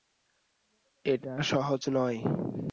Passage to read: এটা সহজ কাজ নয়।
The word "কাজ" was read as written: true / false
false